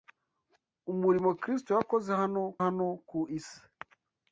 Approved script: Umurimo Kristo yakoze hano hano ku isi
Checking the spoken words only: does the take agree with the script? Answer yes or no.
yes